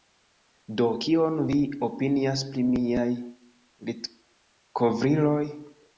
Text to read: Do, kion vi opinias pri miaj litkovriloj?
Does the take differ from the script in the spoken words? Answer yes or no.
no